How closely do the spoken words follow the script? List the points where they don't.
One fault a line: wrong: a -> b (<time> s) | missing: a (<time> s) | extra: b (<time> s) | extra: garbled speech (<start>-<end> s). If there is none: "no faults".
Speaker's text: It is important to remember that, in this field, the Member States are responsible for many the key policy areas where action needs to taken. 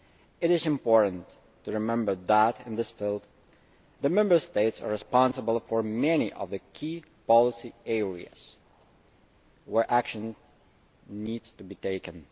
extra: of (6.3 s)
extra: be (11.6 s)